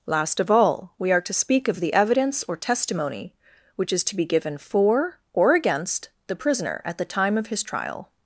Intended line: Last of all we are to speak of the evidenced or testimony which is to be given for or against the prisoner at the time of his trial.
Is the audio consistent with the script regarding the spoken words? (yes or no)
no